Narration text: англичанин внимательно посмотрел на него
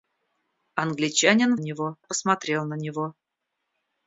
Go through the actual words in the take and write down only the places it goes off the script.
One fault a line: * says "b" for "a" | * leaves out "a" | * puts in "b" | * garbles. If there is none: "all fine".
* says "него" for "внимательно"